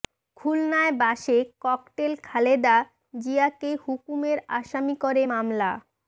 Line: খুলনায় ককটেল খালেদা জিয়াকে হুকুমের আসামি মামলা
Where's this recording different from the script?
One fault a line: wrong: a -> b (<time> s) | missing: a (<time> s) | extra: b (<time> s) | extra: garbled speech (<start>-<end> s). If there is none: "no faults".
extra: বাসে (1.0 s)
extra: করে (5.0 s)